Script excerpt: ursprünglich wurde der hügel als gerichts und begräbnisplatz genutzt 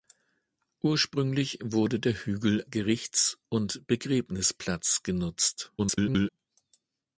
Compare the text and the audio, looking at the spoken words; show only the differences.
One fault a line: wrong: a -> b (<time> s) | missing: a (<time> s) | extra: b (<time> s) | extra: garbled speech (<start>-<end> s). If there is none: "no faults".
missing: als (2.6 s)
extra: garbled speech (5.8-6.3 s)